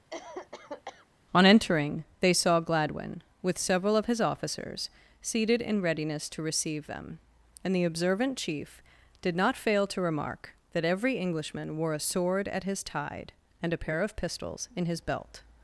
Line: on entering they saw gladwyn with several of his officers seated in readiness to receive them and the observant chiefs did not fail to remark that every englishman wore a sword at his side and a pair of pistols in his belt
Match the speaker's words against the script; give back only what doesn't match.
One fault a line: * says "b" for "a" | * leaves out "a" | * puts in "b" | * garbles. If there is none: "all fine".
* says "chief" for "chiefs"
* says "tide" for "side"